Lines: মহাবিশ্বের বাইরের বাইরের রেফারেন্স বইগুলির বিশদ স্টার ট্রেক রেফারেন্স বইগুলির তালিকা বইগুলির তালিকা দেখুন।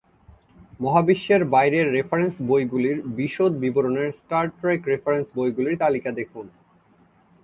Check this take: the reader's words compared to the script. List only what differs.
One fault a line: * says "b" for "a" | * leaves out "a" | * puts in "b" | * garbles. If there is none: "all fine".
* leaves out "বাইরের"
* puts in "বিবরণের"
* leaves out "বইগুলির তালিকা"